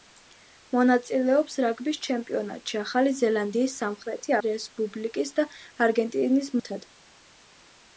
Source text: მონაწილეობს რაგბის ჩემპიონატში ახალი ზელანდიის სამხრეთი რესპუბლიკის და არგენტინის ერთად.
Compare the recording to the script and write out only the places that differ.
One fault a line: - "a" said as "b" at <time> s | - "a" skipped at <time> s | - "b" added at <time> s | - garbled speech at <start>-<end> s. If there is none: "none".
none